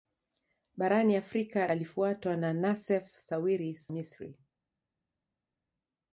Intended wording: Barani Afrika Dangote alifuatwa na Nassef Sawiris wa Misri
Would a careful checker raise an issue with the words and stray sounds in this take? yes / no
yes